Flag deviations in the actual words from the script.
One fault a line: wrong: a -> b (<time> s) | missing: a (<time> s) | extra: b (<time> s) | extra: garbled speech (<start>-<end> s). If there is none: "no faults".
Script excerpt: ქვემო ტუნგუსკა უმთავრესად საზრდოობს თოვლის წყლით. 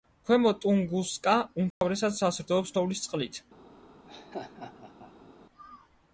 no faults